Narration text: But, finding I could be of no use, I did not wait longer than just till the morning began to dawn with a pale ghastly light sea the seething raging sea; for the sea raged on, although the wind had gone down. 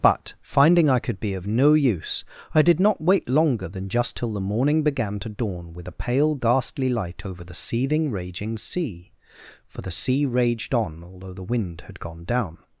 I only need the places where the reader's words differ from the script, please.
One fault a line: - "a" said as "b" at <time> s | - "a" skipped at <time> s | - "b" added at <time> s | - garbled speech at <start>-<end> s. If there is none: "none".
- "sea" said as "over" at 7.2 s